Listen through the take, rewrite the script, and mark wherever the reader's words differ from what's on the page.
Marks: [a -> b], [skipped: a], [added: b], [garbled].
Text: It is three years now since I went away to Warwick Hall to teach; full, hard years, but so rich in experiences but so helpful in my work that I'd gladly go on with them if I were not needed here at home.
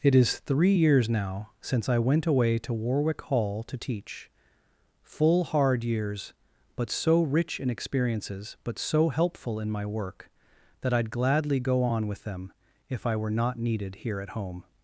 It is three years now since I went away to Warwick Hall to teach; full, hard years, but so rich in experiences but so helpful in my work that I'd gladly go on with them if I were not needed here at home.